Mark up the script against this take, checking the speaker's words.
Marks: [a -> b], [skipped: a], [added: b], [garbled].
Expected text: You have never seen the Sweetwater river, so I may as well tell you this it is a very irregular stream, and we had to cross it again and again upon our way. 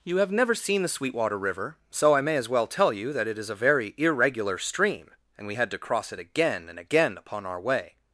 You have never seen the Sweetwater river, so I may as well tell you [this -> that] it is a very irregular stream, and we had to cross it again and again upon our way.